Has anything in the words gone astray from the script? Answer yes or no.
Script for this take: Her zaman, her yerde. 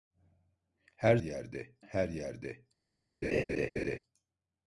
yes